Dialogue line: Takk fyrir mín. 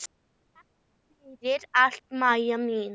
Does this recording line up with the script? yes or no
no